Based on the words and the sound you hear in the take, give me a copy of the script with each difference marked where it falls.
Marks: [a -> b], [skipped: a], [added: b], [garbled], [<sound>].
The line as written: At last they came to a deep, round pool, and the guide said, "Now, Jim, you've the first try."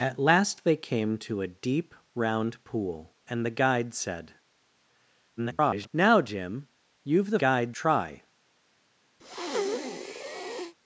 At last they came to a deep, round pool, and the guide said, [garbled] "Now, Jim, you've the [first -> guide] try." [breath]